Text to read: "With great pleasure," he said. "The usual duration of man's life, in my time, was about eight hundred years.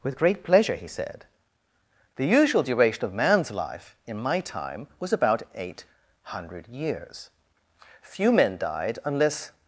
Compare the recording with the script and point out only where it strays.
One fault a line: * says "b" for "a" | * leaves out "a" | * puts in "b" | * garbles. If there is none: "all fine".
* puts in "Few men died unless"